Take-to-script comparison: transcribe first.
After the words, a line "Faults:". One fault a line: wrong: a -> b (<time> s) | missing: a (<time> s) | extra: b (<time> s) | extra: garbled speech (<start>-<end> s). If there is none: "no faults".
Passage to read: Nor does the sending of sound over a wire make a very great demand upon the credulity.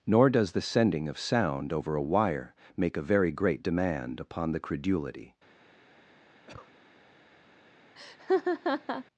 Nor does the sending of sound over a wire make a very great demand upon the credulity.
Faults:
no faults